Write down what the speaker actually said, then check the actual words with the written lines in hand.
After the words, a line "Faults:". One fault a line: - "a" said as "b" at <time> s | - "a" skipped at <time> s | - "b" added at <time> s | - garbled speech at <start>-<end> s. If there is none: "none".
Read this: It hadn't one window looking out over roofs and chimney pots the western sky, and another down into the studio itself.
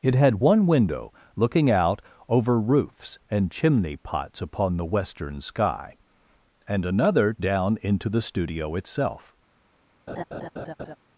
It had one window looking out over roofs and chimney pots upon the western sky, and another down into the studio itself.
Faults:
- "hadn't" said as "had" at 0.1 s
- "upon" added at 4.4 s